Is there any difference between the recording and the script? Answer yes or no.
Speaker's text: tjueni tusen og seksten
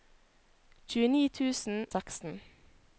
yes